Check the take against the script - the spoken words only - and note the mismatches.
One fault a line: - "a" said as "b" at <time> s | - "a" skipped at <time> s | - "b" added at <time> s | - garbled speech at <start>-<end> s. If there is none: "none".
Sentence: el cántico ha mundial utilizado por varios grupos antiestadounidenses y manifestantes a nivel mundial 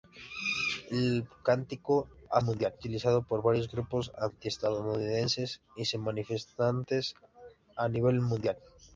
none